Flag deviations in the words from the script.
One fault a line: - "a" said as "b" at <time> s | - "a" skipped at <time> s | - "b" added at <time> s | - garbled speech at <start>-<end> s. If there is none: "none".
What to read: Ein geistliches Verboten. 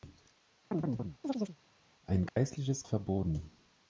none